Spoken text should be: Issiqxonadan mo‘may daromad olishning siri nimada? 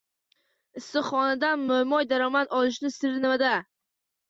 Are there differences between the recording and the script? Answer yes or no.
no